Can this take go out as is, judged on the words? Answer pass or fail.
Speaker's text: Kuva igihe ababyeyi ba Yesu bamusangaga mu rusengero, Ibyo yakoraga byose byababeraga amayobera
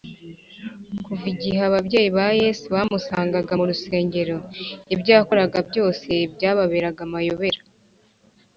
pass